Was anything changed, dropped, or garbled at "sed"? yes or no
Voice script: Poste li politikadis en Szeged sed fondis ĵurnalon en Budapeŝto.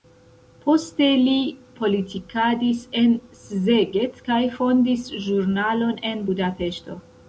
yes